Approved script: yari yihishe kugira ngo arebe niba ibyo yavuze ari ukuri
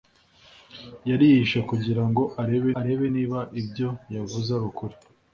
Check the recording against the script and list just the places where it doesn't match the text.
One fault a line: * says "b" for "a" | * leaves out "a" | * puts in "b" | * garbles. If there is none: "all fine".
* puts in "arebe"